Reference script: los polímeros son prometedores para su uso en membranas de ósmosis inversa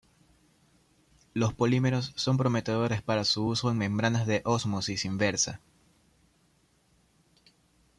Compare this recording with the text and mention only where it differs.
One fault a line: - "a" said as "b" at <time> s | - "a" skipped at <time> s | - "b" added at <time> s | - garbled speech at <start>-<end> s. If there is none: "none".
none